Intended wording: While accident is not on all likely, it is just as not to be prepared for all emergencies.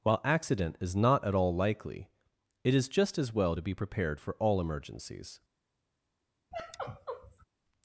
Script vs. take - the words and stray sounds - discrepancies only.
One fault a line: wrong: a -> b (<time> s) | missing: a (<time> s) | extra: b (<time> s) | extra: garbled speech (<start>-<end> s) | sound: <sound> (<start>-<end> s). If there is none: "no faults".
wrong: on -> at (1.2 s)
wrong: not -> well (3.3 s)
sound: sigh (6.5-7.5 s)